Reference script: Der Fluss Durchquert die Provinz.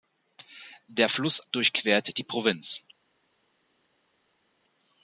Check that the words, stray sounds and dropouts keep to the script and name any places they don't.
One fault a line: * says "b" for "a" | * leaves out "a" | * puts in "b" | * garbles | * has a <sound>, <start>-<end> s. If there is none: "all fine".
all fine